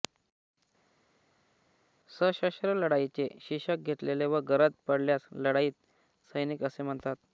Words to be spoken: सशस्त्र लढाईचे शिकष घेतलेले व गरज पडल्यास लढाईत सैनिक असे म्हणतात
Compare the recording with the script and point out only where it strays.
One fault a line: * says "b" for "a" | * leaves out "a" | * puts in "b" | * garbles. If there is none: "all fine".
all fine